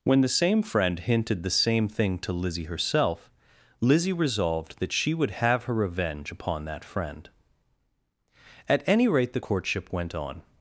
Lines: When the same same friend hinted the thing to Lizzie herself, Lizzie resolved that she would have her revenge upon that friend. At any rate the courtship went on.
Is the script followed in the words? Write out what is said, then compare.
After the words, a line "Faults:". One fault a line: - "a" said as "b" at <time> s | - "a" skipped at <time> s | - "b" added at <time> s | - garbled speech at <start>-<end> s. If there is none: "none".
When the same friend hinted the same thing to Lizzie herself, Lizzie resolved that she would have her revenge upon that friend. At any rate the courtship went on.
Faults:
- "same" skipped at 0.6 s
- "same" added at 1.5 s